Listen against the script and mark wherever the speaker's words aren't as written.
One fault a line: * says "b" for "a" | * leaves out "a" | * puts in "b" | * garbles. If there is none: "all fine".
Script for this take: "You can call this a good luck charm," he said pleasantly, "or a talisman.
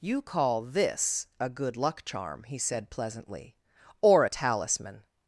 * leaves out "can"